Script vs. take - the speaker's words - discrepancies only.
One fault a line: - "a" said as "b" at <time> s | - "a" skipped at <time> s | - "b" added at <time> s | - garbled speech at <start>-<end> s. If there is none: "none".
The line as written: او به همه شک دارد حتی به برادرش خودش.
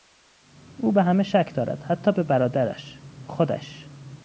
none